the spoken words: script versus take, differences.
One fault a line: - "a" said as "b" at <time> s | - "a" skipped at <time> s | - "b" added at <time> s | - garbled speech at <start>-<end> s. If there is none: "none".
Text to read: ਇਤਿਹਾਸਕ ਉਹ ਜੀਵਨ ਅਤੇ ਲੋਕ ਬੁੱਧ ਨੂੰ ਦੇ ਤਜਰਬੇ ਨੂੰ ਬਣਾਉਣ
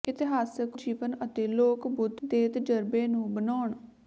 - "ਉਹ" skipped at 0.8 s
- "ਨੂੰ" skipped at 2.2 s